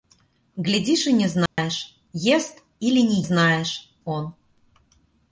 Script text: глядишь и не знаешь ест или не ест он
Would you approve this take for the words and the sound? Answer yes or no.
no